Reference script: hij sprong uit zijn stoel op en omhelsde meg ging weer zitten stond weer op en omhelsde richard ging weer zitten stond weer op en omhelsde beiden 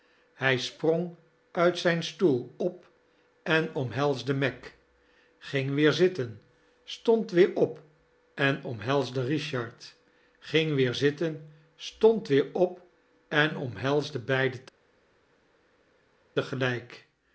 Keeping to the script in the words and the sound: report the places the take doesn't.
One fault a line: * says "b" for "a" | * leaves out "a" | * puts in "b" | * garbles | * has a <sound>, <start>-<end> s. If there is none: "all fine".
all fine